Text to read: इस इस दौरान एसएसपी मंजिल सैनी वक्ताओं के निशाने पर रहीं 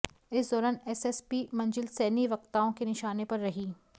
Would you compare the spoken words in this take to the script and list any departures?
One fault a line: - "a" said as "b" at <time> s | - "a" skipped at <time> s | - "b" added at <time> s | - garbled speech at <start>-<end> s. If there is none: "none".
- "इस" skipped at 0.5 s